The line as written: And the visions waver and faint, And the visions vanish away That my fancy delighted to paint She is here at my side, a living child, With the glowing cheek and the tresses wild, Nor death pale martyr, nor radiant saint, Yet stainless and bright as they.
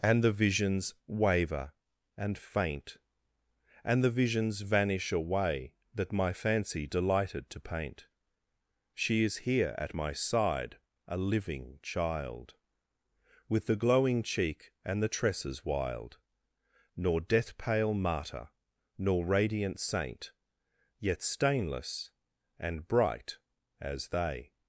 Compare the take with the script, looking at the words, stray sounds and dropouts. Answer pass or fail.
pass